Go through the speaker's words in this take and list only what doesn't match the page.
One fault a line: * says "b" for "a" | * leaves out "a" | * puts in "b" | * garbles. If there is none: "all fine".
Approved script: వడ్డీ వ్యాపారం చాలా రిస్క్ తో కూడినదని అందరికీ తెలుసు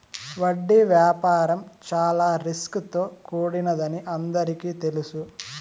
all fine